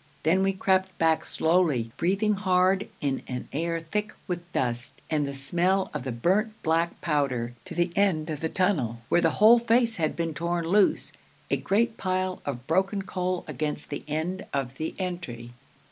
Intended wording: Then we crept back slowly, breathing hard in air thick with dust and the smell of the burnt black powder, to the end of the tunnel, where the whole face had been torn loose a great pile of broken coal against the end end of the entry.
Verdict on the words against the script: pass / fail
fail